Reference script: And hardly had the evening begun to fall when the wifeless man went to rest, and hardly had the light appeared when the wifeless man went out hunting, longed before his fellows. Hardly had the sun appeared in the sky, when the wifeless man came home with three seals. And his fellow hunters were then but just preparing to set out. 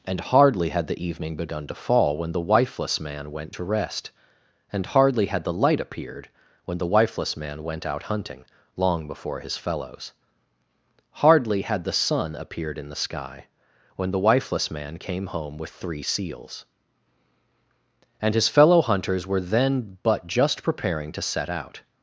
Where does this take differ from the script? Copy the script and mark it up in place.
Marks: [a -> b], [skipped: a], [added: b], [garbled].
And hardly had the evening begun to fall when the wifeless man went to rest, and hardly had the light appeared when the wifeless man went out hunting, [longed -> long] before his fellows. Hardly had the sun appeared in the sky, when the wifeless man came home with three seals. And his fellow hunters were then but just preparing to set out.